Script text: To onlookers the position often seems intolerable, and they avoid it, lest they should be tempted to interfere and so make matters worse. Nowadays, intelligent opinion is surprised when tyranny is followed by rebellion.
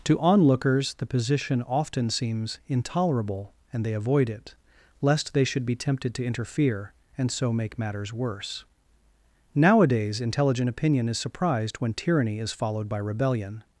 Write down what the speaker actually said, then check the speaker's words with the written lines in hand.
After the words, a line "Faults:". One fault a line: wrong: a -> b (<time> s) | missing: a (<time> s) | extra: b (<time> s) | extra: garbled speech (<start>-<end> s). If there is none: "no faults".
To onlookers the position often seems intolerable, and they avoid it, lest they should be tempted to interfere and so make matters worse. Nowadays, intelligent opinion is surprised when tyranny is followed by rebellion.
Faults:
no faults